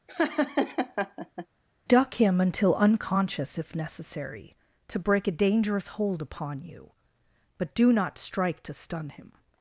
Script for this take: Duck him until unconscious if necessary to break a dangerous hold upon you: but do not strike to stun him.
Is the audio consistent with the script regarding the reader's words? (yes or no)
yes